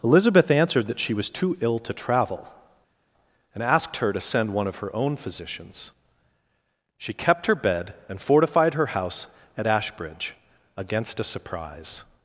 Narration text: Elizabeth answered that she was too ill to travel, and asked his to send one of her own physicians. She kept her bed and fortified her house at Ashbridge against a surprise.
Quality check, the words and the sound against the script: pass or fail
fail